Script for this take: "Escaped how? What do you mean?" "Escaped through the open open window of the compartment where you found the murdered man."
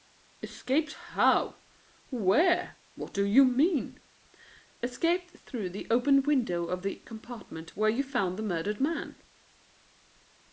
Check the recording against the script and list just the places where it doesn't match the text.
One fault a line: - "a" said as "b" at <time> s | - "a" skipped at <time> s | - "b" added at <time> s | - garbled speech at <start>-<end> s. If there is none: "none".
- "Where" added at 2.1 s
- "open" skipped at 6.2 s